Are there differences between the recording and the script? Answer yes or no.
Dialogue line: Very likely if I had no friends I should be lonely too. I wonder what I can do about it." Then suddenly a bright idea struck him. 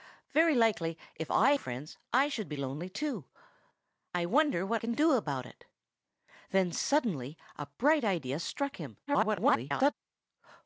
yes